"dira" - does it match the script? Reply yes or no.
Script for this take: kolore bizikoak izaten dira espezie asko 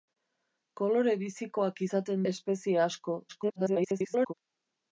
no